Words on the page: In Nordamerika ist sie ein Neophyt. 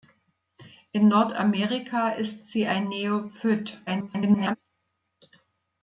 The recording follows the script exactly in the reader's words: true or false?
false